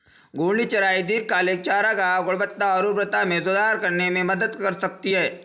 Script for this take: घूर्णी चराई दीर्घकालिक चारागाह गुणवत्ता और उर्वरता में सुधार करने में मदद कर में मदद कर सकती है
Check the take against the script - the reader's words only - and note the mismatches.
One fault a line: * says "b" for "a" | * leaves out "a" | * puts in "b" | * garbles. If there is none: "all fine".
* leaves out "में मदद कर"